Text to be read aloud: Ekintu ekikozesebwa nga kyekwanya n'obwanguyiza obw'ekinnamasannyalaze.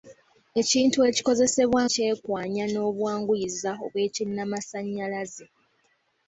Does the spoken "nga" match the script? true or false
false